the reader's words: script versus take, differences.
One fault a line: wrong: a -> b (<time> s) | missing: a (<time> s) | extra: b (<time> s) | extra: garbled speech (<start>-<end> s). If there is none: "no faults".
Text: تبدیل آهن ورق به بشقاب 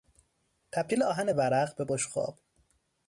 no faults